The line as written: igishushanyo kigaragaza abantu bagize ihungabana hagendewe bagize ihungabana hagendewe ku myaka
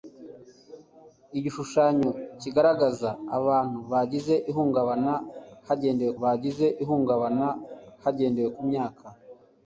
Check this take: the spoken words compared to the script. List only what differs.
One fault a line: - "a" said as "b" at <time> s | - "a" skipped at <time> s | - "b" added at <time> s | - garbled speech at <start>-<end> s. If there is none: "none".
none